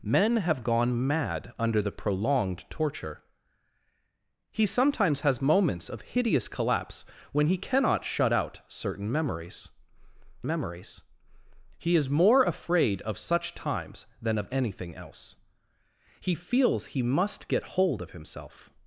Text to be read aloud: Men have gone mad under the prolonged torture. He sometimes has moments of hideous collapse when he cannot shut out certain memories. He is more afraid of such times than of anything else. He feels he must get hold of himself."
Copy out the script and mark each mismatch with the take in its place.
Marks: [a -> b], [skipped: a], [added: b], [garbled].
Men have gone mad under the prolonged torture. He sometimes has moments of hideous collapse when he cannot shut out certain memories. [added: memories] He is more afraid of such times than of anything else. He feels he must get hold of himself."